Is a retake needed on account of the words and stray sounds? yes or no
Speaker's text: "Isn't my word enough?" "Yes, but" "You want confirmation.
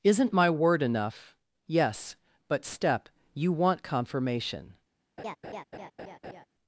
yes